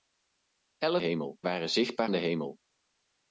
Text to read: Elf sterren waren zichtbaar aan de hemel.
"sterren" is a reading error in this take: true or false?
true